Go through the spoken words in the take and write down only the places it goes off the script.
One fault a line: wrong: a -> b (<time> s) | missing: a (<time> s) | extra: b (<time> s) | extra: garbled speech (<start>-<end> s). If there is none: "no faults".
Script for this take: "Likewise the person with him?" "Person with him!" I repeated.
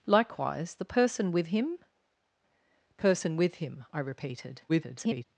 extra: garbled speech (4.7-5.2 s)